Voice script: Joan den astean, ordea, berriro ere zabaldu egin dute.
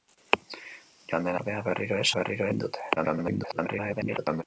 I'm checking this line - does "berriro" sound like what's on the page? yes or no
yes